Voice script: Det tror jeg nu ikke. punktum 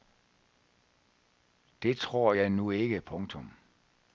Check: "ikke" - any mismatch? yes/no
no